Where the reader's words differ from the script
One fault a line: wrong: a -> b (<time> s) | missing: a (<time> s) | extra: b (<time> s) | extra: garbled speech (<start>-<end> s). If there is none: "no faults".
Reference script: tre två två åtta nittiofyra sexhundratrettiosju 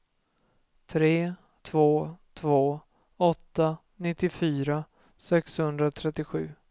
no faults